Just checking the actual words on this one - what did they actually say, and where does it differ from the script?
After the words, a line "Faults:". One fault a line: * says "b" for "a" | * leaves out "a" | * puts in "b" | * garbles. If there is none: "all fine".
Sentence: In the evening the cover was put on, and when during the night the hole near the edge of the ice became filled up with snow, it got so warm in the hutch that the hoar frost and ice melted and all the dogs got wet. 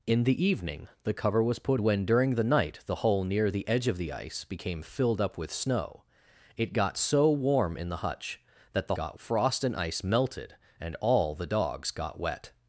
In the evening the cover was put when during the night the hole near the edge of the ice became filled up with snow, it got so warm in the hutch that the got frost and ice melted and all the dogs got wet.
Faults:
* leaves out "on and"
* says "got" for "hoar"